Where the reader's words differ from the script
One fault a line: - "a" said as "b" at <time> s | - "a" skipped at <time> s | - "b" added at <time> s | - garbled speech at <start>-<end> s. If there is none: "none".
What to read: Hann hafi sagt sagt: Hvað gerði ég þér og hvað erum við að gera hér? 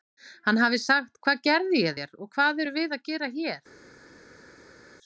- "sagt" skipped at 1.2 s